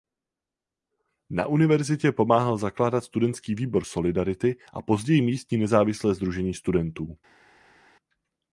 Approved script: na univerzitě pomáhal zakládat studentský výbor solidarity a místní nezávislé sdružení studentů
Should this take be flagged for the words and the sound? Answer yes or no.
yes